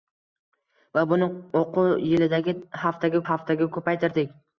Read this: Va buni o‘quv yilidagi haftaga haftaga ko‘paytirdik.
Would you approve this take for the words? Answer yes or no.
yes